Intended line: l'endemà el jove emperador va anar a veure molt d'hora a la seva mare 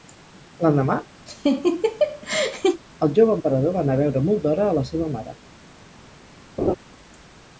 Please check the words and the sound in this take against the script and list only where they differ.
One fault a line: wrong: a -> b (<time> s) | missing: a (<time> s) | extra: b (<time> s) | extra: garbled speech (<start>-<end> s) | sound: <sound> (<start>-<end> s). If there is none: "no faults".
sound: laugh (1.3-2.8 s)
sound: laugh (6.6-6.8 s)